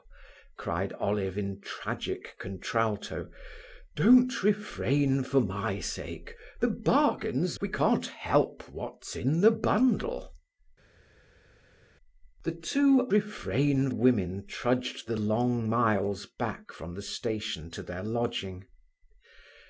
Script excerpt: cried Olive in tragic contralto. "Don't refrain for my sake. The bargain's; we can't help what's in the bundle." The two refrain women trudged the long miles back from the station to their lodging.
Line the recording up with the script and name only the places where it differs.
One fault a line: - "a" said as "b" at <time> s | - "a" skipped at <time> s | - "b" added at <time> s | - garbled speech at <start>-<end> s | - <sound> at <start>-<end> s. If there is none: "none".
none